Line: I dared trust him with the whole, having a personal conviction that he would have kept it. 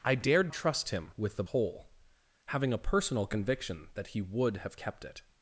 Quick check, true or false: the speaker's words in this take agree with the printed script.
true